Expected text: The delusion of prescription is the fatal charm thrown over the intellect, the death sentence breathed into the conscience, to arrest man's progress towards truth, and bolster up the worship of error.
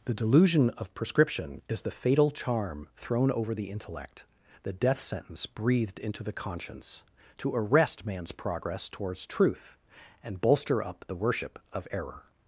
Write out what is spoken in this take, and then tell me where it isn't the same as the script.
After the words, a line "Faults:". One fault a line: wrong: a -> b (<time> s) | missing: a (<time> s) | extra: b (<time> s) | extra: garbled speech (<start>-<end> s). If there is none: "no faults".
The delusion of prescription is the fatal charm thrown over the intellect, the death sentence breathed into the conscience, to arrest man's progress towards truth, and bolster up the worship of error.
Faults:
no faults